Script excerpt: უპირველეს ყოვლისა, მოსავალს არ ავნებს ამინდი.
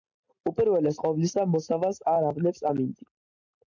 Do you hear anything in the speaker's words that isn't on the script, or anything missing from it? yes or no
no